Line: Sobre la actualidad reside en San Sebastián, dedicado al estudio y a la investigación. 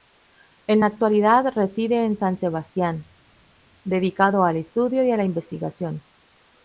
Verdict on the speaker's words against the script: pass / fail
fail